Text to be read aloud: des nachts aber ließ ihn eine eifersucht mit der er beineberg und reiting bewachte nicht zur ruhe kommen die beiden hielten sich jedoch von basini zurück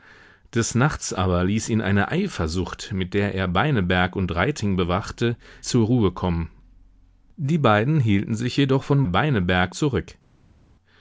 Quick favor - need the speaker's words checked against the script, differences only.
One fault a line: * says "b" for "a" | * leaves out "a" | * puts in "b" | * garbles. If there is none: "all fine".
* leaves out "nicht"
* says "beineberg" for "basini"